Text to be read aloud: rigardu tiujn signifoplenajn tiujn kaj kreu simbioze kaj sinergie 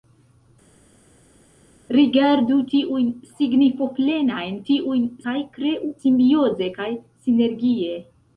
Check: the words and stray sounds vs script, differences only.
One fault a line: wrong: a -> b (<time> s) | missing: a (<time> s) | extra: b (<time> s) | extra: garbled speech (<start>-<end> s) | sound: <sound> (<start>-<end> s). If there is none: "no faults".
no faults